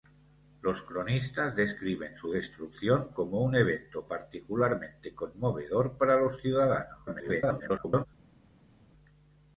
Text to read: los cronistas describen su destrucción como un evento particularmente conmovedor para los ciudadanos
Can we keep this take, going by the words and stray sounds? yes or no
no